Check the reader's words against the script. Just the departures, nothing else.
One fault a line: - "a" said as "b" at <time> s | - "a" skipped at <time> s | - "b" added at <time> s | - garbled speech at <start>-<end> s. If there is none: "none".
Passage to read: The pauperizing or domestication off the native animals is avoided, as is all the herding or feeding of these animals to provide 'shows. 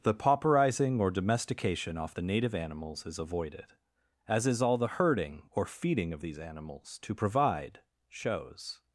none